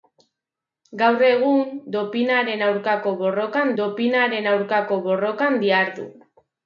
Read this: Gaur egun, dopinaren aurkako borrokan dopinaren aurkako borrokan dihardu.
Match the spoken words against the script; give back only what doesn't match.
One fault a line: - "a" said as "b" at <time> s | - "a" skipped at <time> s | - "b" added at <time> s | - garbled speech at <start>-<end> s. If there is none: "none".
none